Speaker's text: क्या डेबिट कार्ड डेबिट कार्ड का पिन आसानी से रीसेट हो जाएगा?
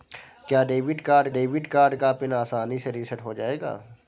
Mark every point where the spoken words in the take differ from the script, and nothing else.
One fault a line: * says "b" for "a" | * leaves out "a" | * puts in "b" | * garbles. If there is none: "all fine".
all fine